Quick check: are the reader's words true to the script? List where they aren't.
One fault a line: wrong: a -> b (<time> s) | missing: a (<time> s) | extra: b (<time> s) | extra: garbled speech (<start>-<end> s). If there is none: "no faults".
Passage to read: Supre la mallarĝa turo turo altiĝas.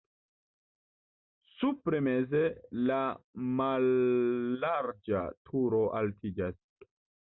extra: meze (2.1 s)
missing: turo (5.9 s)